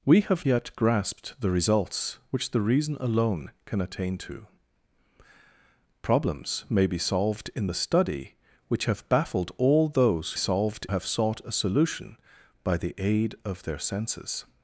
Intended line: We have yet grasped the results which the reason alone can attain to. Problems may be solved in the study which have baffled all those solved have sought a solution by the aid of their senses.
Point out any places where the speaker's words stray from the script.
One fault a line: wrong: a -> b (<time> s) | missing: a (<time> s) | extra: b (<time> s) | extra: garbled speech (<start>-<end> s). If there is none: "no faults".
no faults